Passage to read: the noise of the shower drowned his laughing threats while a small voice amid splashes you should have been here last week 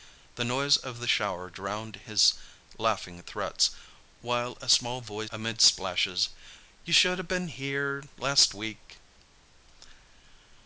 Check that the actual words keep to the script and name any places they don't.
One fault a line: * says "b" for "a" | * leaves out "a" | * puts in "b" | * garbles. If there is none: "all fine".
all fine